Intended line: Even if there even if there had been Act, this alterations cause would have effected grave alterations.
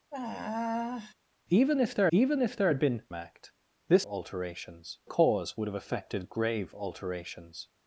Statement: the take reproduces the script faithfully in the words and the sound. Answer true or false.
false